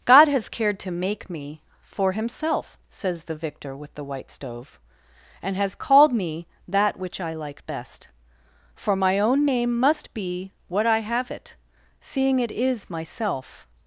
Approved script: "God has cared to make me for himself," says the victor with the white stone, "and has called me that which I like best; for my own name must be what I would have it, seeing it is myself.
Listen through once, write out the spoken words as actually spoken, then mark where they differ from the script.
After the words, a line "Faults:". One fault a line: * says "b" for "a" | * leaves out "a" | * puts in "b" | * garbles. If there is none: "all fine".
"God has cared to make me for himself," says the victor with the white stove, "and has called me that which I like best; for my own name must be what I have it, seeing it is myself.
Faults:
* says "stove" for "stone"
* leaves out "would"